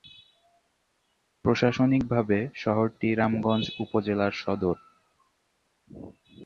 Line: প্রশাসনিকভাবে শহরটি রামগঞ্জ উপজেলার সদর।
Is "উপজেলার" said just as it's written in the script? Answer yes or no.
yes